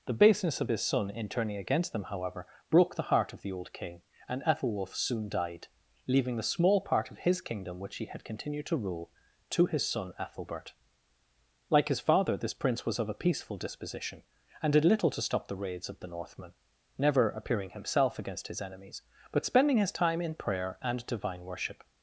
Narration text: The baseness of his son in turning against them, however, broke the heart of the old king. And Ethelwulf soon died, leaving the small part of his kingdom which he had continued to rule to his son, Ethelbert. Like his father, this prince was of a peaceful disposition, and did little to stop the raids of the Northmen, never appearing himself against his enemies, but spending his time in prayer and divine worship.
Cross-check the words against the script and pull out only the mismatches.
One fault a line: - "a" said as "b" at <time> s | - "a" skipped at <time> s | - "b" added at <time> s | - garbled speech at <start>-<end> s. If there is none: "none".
none